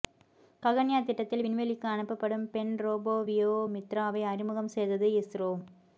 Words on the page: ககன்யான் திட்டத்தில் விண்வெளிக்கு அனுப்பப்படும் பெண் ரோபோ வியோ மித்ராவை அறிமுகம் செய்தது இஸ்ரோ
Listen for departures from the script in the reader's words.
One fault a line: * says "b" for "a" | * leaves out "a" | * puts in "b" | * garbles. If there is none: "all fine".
all fine